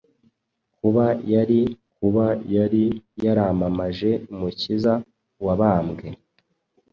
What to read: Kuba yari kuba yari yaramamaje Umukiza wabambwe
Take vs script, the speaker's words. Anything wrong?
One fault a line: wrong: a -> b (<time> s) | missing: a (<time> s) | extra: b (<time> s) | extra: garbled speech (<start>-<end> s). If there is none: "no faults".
no faults